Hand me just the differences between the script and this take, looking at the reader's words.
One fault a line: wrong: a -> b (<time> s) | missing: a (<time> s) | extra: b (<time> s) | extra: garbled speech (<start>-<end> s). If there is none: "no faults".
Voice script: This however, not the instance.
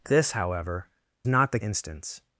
no faults